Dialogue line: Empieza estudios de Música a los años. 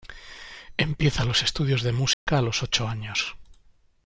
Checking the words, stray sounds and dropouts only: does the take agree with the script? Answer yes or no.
no